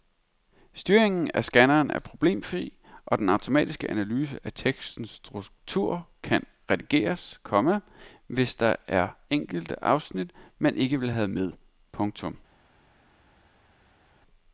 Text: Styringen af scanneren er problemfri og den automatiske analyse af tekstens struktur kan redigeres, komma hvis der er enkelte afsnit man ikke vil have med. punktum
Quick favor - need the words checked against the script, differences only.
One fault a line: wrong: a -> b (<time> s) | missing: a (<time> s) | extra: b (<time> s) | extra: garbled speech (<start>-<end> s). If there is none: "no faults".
no faults